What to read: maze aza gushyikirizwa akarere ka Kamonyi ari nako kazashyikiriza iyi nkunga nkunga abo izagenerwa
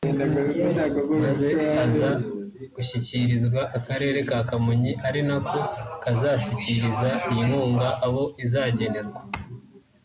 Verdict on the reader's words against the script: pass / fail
fail